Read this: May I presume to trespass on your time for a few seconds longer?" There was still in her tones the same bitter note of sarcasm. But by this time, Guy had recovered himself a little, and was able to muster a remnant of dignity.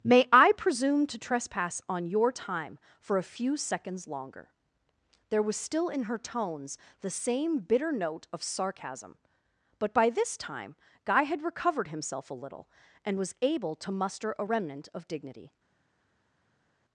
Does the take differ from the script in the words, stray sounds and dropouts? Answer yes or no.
no